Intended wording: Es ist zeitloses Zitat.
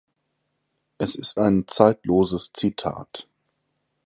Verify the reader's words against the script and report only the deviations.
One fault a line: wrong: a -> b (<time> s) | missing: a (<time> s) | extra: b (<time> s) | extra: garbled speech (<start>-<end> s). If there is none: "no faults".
extra: ein (1.4 s)